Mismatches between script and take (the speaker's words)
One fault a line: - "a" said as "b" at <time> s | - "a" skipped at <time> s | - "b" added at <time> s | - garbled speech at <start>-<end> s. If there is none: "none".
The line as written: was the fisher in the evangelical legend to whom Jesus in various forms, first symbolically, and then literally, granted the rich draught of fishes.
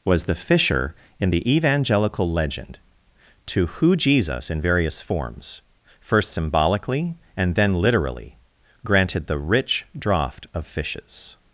- "whom" said as "who" at 3.7 s